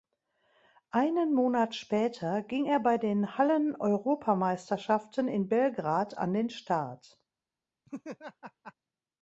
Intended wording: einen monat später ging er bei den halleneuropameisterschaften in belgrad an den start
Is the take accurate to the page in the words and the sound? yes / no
no